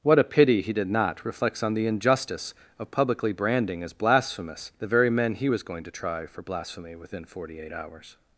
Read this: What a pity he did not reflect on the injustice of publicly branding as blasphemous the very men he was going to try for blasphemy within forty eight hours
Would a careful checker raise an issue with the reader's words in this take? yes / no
yes